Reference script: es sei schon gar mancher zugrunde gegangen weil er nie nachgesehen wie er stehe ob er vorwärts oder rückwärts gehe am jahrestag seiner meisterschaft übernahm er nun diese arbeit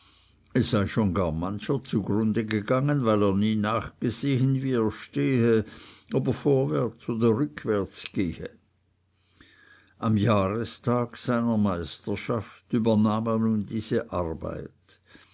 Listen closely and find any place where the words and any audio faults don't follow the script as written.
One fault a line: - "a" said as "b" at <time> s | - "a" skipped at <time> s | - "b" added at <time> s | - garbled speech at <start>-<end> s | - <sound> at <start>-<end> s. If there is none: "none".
none